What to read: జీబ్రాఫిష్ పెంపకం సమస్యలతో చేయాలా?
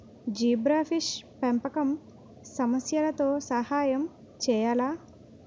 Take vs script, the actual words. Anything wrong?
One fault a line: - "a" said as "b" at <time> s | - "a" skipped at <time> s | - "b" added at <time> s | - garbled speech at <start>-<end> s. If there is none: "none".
- "సహాయం" added at 3.5 s